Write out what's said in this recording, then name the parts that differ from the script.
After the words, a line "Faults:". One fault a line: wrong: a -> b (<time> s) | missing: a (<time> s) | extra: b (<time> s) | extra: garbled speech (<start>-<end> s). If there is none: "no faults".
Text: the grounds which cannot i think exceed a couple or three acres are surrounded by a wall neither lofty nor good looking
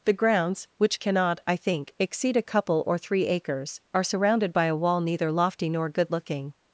the grounds which cannot i think exceed a couple or three acres are surrounded by a wall neither lofty nor good looking
Faults:
no faults